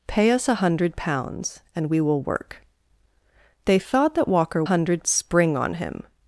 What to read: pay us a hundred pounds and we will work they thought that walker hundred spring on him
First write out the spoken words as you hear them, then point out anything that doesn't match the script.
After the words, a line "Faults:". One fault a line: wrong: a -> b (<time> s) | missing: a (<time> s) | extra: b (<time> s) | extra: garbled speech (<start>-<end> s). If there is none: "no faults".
pay us a hundred pounds and we will work they thought that walker hundred spring on him
Faults:
no faults